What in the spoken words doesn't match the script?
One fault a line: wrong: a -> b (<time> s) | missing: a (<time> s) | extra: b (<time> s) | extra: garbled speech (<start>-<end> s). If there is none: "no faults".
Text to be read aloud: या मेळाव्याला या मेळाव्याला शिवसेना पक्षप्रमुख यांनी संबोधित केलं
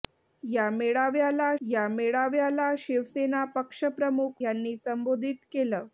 no faults